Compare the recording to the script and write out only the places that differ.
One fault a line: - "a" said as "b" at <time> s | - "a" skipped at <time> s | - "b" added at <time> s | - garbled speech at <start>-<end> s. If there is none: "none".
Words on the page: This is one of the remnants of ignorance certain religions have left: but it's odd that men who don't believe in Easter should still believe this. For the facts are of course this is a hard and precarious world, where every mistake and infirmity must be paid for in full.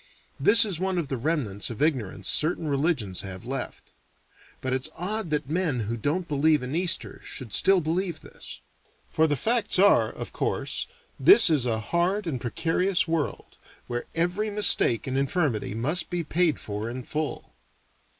none